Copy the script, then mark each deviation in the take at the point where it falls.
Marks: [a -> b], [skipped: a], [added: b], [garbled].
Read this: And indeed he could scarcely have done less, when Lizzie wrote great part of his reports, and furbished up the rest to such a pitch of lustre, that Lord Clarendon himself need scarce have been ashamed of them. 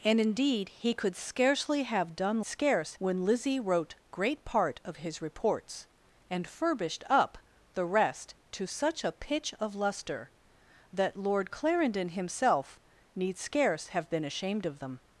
And indeed he could scarcely have done [less, -> scarce] when Lizzie wrote great part of his reports, and furbished up the rest to such a pitch of lustre, that Lord Clarendon himself need scarce have been ashamed of them.